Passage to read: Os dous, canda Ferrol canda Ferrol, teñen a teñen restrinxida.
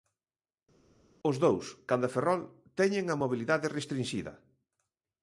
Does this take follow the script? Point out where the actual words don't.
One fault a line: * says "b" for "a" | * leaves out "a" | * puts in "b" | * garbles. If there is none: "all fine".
* leaves out "canda Ferrol"
* says "mobilidade" for "teñen"